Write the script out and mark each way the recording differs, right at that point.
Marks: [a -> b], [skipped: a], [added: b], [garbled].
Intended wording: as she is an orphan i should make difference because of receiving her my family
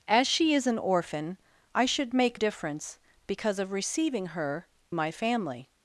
as she is an orphan i should make difference because of receiving her my family